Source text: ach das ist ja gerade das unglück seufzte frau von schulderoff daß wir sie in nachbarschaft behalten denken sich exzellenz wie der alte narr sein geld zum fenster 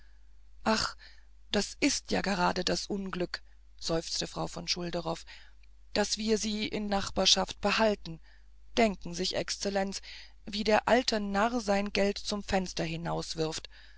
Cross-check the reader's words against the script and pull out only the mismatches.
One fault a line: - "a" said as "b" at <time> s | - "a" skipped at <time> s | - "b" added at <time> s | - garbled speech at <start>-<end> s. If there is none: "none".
none